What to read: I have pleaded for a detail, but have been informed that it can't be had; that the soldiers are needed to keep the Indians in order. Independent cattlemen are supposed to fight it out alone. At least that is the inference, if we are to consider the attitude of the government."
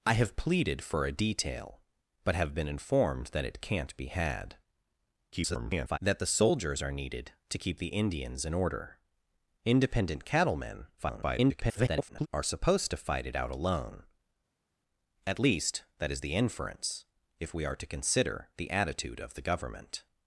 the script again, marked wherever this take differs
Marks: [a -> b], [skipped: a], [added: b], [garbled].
I have pleaded for a detail, but have been informed that it can't be had; [garbled] that the soldiers are needed to keep the Indians in order. Independent cattlemen [garbled] are supposed to fight it out alone. At least that is the inference, if we are to consider the attitude of the government."